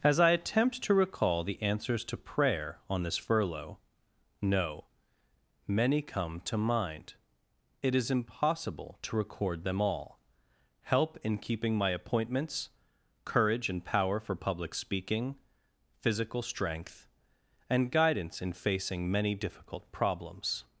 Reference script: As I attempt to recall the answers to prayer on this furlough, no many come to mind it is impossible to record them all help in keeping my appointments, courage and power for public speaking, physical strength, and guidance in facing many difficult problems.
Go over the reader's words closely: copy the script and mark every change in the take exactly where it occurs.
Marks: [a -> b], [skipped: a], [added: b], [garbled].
As I attempt to recall the answers to prayer on this furlough, no many come to mind it is impossible to record them all help in keeping my appointments, courage and power for public speaking, physical strength, and guidance in facing many difficult problems.